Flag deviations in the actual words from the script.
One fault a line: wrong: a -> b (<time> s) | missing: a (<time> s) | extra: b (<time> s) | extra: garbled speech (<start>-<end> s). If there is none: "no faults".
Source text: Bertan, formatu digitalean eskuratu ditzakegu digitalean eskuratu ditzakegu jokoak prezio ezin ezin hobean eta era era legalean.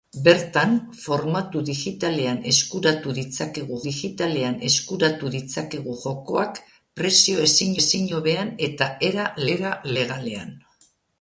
no faults